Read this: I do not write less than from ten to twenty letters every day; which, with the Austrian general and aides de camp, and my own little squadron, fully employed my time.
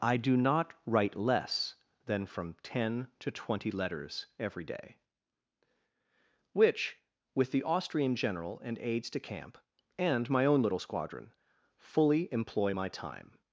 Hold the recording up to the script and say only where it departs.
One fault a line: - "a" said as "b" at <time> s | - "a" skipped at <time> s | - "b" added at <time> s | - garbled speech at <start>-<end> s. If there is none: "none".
- "employed" said as "employ" at 12.3 s